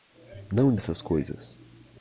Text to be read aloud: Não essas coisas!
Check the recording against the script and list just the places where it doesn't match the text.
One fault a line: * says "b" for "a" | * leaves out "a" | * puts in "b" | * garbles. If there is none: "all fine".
all fine